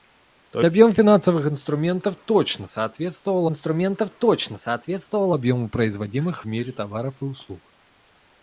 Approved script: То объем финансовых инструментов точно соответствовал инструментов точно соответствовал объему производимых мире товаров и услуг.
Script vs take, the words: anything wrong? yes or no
no